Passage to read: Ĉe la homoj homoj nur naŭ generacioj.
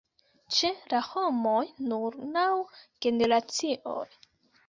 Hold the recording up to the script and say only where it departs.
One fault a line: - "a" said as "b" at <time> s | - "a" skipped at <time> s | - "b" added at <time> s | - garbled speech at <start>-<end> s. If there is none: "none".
- "homoj" skipped at 1.6 s